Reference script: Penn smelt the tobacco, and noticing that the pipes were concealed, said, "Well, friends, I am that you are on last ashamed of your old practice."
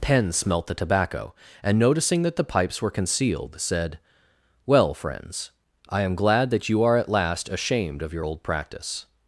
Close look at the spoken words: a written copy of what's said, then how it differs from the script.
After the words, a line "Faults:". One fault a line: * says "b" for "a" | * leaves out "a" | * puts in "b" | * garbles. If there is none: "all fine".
Penn smelt the tobacco, and noticing that the pipes were concealed, said, "Well, friends, I am glad that you are at last ashamed of your old practice."
Faults:
* puts in "glad"
* says "at" for "on"